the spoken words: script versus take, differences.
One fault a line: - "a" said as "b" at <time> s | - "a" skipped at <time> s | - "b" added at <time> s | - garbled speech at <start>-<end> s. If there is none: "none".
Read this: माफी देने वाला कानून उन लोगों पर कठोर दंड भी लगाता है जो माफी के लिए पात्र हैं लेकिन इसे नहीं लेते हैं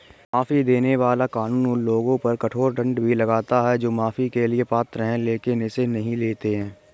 none